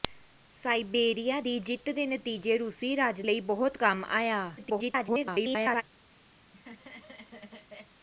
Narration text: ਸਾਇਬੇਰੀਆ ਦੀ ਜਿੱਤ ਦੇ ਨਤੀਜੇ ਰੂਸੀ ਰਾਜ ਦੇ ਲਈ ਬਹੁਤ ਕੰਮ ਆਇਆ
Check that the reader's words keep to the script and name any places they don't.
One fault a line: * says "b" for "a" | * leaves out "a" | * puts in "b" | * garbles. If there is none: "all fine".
* leaves out "ਦੇ"
* garbles